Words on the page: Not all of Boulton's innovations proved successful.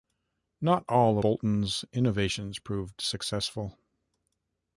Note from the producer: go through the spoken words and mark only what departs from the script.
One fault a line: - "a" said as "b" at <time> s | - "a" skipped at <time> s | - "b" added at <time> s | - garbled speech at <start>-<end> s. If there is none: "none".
- "of" skipped at 1.2 s